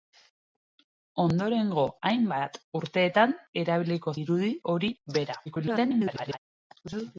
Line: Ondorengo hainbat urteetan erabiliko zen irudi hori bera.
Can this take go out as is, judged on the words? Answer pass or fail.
fail